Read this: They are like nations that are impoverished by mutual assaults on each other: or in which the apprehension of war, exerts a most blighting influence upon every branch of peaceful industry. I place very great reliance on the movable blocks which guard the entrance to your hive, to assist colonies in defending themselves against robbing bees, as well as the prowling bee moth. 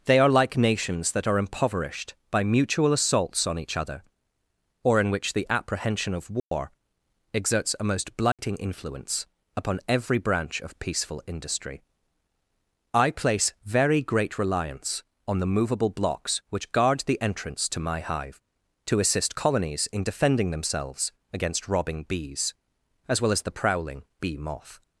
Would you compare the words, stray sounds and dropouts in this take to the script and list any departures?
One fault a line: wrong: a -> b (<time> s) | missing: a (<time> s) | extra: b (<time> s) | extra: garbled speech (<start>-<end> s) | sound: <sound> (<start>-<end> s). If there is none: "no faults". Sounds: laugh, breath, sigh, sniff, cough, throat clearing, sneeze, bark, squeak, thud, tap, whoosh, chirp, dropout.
sound: dropout (6.4-6.5 s)
sound: dropout (8.3-8.4 s)
wrong: your -> my (17.8 s)